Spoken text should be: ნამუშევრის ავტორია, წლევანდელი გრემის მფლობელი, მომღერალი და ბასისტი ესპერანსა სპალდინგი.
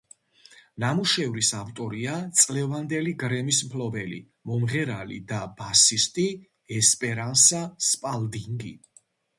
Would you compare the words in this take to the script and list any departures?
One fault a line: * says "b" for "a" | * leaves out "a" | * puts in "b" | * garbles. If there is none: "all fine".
all fine